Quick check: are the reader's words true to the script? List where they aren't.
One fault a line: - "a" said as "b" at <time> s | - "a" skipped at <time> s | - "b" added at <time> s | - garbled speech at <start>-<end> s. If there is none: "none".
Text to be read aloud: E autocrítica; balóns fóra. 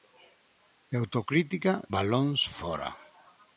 none